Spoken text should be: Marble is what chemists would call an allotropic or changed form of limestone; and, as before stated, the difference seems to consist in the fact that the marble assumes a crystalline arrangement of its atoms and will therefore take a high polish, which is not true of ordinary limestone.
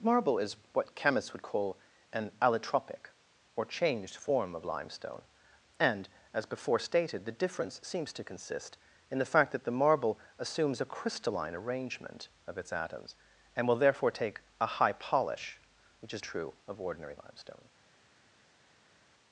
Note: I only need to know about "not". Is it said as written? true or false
false